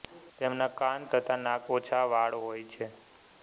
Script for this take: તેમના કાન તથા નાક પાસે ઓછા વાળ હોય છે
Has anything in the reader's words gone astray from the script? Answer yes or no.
yes